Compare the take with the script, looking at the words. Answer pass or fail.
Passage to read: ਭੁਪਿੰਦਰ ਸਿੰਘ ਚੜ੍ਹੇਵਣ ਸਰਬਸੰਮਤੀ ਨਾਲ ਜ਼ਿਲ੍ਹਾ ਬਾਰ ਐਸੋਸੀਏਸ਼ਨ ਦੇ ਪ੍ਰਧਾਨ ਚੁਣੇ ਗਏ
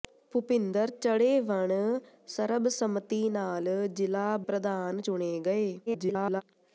fail